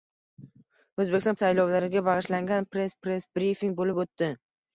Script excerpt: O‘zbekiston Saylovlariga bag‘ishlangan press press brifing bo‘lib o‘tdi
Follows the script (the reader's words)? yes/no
yes